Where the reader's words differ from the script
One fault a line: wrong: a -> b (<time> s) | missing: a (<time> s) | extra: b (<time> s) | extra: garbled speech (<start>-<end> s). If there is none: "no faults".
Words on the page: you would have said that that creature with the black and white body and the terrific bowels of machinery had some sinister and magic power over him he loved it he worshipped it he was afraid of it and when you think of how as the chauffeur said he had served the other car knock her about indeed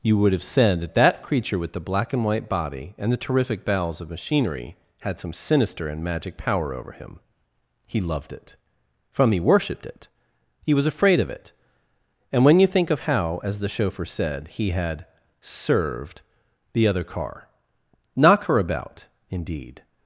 extra: from (9.1 s)